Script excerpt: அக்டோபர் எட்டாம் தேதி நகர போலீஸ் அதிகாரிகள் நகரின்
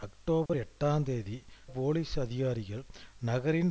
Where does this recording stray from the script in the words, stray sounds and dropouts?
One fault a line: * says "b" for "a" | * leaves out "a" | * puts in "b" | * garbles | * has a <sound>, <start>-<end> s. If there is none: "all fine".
* has a dropout, 0.5-0.5 s
* leaves out "நகர"